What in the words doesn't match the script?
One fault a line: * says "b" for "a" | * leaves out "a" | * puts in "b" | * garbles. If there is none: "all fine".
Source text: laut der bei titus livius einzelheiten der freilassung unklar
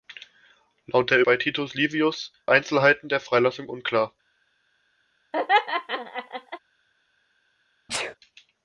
all fine